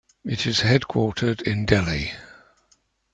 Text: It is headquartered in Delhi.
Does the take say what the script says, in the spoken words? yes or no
yes